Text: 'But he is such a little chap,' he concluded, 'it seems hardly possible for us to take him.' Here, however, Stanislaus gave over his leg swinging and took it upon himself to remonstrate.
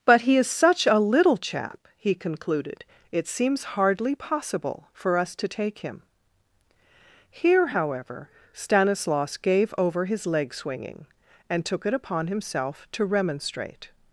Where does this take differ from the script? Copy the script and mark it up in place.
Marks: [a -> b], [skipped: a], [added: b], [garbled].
'But he is such a little chap,' he concluded, 'it seems hardly possible for us to take him.' Here, however, Stanislaus gave over his leg swinging and took it upon himself to remonstrate.